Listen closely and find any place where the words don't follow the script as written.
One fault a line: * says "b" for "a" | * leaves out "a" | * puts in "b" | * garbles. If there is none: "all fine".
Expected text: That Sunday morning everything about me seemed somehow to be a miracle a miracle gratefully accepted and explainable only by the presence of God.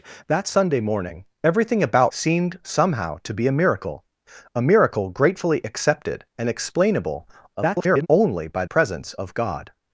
* leaves out "me"
* garbles
* leaves out "the"